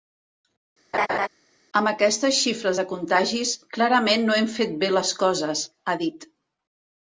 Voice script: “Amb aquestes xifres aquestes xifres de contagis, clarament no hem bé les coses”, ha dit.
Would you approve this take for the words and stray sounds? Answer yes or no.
no